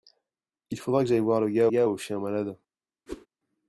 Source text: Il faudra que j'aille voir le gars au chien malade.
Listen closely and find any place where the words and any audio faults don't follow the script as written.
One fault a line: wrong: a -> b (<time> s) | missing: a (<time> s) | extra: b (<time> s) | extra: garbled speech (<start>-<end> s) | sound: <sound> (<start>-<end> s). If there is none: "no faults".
extra: gars (1.7 s)
sound: whoosh (3.1-3.3 s)